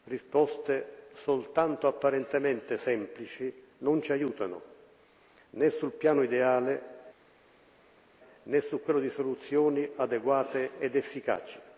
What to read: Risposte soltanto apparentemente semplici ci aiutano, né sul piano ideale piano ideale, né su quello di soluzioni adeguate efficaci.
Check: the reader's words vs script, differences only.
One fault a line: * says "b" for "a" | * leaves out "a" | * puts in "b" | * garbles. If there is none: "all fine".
* puts in "non"
* leaves out "piano ideale"
* puts in "ed"